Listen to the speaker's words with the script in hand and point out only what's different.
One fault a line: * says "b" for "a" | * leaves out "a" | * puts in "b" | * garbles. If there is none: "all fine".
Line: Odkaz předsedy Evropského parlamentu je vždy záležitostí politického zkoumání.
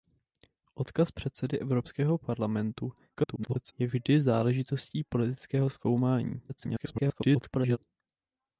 * garbles
* garbles